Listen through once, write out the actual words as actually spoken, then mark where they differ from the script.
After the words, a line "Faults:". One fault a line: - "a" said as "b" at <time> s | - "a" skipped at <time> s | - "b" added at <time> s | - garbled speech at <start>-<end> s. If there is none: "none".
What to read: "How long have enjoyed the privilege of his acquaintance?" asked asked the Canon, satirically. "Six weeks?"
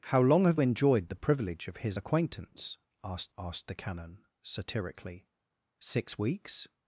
"How long have enjoyed the privilege of his acquaintance?" asked asked the Canon, satirically. "Six weeks?"
Faults:
none